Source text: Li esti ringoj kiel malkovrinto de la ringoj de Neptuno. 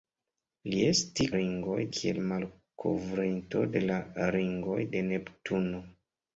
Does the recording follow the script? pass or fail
pass